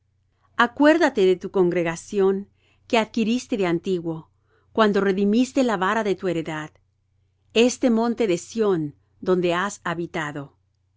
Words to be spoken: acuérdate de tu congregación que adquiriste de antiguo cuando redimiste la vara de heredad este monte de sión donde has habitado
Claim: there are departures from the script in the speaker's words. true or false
true